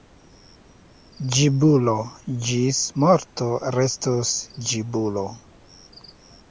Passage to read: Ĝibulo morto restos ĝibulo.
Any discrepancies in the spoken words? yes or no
yes